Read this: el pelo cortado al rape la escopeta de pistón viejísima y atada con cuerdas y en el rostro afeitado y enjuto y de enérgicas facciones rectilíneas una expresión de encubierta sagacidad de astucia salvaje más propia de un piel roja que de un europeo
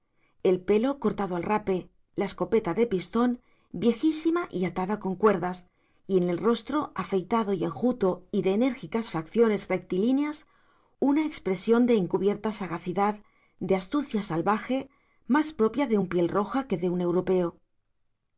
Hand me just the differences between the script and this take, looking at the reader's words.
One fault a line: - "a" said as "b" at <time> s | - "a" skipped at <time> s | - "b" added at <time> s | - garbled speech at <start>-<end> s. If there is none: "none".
none